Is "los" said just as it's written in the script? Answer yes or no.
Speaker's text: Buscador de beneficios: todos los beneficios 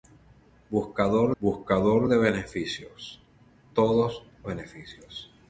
no